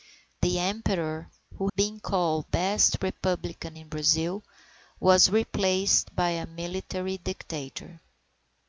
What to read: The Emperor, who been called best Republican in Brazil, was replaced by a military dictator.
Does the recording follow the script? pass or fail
pass